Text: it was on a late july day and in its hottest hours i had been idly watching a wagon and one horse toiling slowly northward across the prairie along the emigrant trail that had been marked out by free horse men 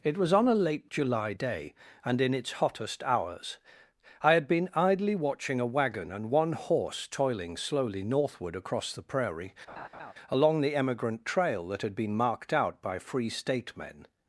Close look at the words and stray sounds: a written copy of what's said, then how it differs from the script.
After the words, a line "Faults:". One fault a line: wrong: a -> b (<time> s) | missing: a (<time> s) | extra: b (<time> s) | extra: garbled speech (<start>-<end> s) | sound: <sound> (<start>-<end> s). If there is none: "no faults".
it was on a late july day and in its hottest hours i had been idly watching a wagon and one horse toiling slowly northward across the prairie along the emigrant trail that had been marked out by free state men
Faults:
sound: laugh (9.7-10.1 s)
wrong: horse -> state (13.3 s)